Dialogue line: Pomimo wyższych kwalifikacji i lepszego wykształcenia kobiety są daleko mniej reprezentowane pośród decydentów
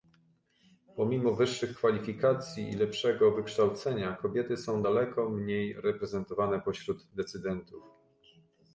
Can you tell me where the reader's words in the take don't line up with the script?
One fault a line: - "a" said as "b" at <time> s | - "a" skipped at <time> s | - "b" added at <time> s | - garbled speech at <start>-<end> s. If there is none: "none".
none